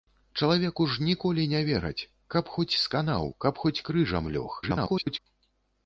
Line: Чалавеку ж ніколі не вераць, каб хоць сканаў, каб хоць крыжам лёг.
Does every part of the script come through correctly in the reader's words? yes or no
no